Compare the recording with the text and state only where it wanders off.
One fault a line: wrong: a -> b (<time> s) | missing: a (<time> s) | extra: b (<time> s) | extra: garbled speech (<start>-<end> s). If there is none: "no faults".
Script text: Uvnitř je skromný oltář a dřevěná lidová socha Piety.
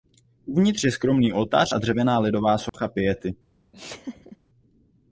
no faults